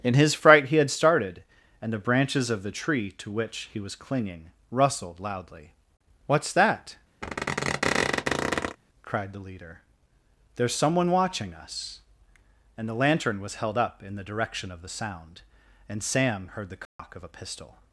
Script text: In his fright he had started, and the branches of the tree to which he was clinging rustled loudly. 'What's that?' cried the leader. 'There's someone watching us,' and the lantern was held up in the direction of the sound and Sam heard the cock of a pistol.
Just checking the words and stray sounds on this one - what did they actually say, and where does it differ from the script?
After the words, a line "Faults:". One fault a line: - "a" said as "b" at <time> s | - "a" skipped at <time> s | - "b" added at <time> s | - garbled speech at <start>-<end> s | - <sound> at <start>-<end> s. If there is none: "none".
In his fright he had started, and the branches of the tree to which he was clinging rustled loudly. 'What's that?' cried the leader. 'There's someone watching us,' and the lantern was held up in the direction of the sound and Sam heard the cock of a pistol.
Faults:
- squeak at 7.2-8.8 s
- dropout at 16.9-17.0 s